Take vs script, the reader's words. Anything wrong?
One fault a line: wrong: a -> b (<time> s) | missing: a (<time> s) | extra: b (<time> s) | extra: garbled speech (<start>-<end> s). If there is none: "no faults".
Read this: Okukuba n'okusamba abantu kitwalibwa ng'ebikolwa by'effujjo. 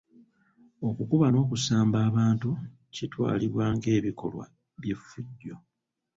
no faults